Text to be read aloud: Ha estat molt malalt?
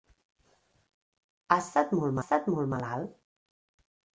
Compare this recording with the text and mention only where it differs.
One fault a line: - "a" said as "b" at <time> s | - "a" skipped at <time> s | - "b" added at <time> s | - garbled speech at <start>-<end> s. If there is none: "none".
- "estat molt" added at 2.2 s